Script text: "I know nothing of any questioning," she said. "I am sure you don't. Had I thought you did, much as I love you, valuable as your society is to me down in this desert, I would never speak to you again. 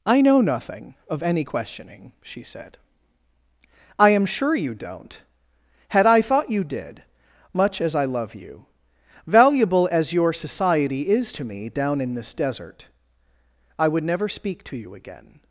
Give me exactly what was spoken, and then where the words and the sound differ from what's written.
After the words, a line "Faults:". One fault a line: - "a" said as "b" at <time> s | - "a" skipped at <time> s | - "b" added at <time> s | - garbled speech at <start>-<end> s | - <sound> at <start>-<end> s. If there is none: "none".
"I know nothing of any questioning," she said. "I am sure you don't. Had I thought you did, much as I love you, valuable as your society is to me down in this desert, I would never speak to you again.
Faults:
none